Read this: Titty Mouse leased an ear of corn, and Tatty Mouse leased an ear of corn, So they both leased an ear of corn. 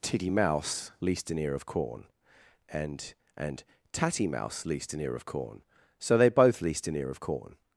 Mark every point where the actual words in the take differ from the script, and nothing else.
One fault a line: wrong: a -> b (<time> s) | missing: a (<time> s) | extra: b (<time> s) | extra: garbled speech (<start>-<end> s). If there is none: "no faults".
extra: and (3.4 s)